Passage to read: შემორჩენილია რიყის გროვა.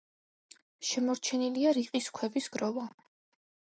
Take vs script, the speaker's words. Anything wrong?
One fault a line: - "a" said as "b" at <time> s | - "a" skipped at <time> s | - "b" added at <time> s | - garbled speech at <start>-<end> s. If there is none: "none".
- "ქვების" added at 2.2 s